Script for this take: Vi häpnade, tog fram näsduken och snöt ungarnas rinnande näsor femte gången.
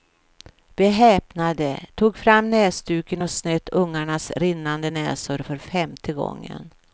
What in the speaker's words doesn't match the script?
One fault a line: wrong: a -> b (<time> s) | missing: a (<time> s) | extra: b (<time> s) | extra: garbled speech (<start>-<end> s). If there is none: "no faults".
extra: för (5.4 s)